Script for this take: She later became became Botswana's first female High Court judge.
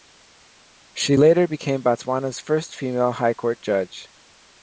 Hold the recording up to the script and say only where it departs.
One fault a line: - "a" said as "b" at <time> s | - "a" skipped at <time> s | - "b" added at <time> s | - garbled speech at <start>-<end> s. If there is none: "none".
- "became" skipped at 1.8 s